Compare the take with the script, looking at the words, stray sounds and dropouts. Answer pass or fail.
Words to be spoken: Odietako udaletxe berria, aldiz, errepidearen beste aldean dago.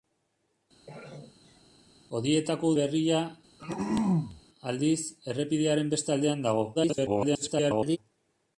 fail